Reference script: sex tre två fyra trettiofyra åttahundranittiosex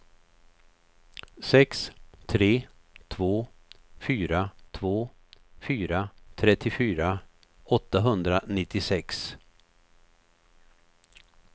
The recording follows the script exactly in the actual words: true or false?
false